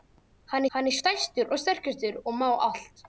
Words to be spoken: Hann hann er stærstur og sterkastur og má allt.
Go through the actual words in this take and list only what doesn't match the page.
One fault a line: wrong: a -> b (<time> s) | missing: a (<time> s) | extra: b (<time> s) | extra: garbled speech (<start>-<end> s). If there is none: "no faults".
no faults